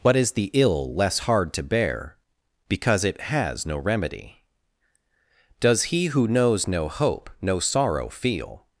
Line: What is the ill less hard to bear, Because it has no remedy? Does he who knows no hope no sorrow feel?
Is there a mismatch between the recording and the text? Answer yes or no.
no